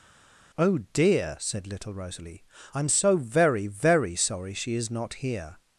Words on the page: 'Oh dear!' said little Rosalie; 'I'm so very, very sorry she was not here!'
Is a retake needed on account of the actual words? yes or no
yes